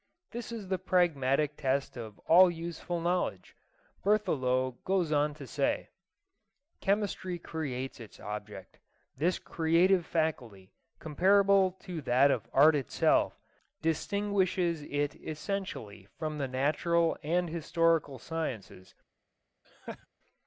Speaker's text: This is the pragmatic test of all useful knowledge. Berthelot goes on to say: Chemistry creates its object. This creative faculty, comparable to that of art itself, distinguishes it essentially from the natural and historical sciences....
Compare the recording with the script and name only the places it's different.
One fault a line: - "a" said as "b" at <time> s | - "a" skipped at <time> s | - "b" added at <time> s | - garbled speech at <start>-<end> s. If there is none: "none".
none